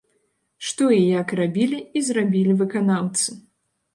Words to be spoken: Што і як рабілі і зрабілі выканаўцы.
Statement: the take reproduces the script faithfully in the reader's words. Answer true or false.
true